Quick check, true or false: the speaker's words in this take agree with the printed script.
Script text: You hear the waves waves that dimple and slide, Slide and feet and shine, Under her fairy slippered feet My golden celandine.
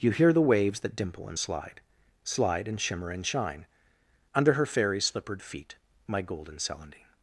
false